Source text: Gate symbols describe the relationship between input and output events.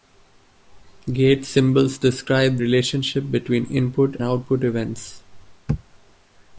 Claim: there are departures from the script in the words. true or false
true